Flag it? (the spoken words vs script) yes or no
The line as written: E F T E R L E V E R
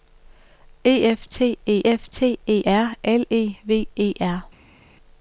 yes